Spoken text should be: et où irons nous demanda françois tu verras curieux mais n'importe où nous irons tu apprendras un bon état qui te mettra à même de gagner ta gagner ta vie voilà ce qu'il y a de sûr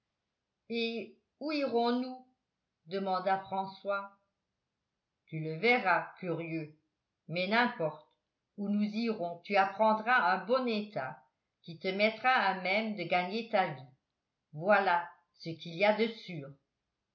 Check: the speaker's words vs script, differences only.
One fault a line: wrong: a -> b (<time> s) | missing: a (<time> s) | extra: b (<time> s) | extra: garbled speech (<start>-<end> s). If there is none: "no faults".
extra: le (5.4 s)
missing: gagner ta (13.7 s)